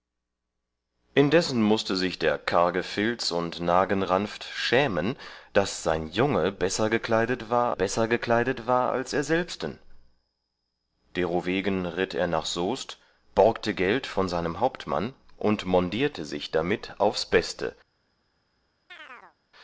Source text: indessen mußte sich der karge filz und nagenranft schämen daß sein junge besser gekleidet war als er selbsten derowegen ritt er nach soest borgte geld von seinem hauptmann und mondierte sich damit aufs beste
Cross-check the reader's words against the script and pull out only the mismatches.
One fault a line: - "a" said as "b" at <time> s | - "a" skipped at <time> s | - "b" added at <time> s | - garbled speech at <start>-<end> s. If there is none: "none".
- "besser gekleidet war" added at 7.7 s